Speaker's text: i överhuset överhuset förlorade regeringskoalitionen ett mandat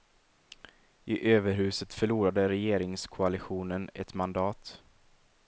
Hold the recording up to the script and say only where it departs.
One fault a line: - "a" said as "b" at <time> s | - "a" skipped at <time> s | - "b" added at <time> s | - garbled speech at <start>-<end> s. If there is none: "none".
- "överhuset" skipped at 1.9 s